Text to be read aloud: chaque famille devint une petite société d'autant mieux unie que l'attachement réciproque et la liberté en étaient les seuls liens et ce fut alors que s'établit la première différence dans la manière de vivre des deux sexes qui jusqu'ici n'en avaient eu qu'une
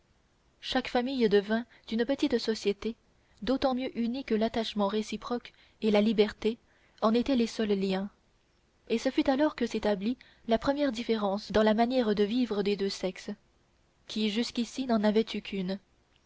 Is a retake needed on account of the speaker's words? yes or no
no